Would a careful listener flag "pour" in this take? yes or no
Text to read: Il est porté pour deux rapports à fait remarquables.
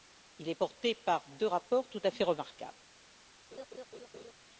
yes